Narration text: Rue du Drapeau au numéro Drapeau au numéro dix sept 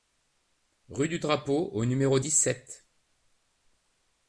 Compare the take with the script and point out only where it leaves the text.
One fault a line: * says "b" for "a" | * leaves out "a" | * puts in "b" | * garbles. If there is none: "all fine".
* leaves out "Drapeau au numéro"